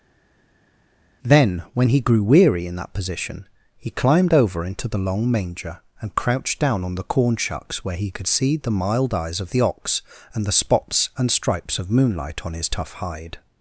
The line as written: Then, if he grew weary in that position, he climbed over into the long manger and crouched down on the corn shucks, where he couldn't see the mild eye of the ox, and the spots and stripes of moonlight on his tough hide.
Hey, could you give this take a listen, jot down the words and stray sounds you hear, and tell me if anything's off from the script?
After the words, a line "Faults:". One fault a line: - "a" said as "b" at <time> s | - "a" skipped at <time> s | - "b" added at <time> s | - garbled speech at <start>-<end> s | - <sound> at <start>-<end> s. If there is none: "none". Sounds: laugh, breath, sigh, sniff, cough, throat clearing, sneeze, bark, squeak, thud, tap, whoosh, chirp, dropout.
Then, when he grew weary in that position, he climbed over into the long manger and crouched down on the corn shucks, where he could see the mild eyes of the ox, and the spots and stripes of moonlight on his tough hide.
Faults:
- "if" said as "when" at 1.8 s
- "couldn't" said as "could" at 8.1 s
- "eye" said as "eyes" at 9.1 s